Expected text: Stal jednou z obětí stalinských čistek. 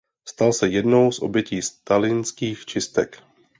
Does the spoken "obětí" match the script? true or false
true